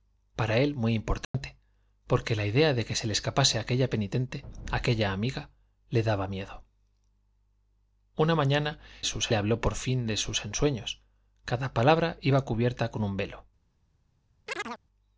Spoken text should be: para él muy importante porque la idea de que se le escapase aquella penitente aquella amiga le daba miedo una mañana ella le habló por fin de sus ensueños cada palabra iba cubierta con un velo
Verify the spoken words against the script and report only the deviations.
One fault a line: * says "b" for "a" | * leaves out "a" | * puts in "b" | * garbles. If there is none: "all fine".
* says "sus" for "ella"